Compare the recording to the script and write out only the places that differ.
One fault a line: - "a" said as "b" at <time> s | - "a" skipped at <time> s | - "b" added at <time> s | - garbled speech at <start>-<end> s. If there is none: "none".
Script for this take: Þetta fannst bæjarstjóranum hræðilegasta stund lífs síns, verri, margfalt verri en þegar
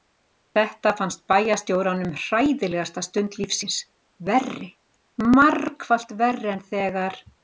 none